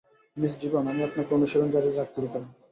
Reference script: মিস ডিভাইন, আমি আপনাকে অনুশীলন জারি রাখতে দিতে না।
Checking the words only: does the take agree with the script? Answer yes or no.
yes